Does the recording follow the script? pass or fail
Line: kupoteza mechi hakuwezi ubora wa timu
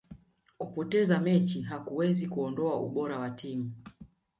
fail